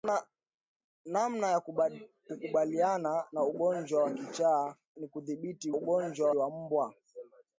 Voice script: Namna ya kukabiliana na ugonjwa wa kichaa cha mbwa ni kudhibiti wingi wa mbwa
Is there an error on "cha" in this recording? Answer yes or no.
yes